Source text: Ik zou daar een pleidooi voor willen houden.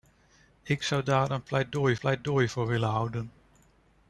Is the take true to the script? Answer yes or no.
no